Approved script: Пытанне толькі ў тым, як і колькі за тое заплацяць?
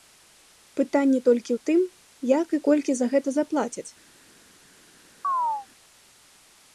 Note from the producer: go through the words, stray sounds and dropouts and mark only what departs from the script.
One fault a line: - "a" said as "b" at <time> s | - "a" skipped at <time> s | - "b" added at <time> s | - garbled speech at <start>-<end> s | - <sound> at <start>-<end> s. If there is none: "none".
- "тое" said as "гэта" at 3.1 s
- chirp at 5.2-5.7 s